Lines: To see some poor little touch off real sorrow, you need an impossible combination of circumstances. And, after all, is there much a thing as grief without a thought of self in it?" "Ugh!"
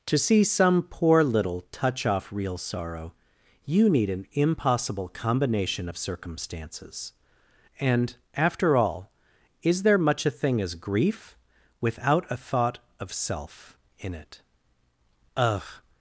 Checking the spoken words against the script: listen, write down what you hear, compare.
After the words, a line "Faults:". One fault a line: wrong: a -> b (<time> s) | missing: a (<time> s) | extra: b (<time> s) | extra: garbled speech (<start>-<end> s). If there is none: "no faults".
To see some poor little touch off real sorrow, you need an impossible combination of circumstances. And, after all, is there much a thing as grief without a thought of self in it?" "Ugh!"
Faults:
no faults